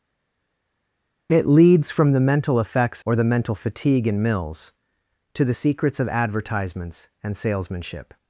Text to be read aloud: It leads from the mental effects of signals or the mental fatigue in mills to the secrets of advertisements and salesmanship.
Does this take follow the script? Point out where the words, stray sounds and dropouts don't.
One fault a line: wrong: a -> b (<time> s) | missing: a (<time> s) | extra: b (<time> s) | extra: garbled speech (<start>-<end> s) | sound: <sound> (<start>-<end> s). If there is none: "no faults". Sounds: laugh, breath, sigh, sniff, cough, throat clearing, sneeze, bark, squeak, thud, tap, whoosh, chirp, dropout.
missing: of signals (3.0 s)